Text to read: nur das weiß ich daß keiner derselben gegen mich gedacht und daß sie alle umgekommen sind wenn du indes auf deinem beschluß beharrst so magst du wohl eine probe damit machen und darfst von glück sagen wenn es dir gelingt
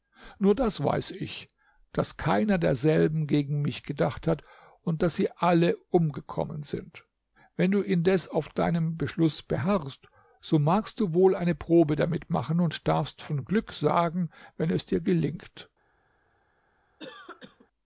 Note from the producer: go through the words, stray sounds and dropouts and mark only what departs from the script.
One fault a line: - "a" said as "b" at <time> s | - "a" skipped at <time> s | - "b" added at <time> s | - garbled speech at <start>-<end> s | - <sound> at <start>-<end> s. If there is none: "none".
- "hat" added at 4.2 s
- cough at 17.0-17.7 s